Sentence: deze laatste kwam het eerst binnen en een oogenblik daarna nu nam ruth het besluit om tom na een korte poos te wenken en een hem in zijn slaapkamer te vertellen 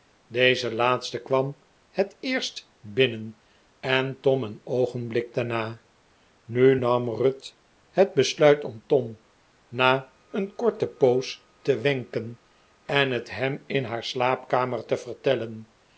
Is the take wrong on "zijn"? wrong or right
wrong